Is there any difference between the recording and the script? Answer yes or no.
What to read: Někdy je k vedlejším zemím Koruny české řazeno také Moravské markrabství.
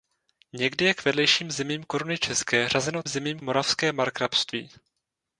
yes